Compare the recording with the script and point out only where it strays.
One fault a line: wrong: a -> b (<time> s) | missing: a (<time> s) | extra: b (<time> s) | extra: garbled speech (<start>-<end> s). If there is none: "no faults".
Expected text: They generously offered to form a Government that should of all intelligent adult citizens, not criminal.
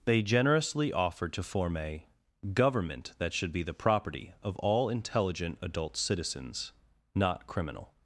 extra: be the property (3.5 s)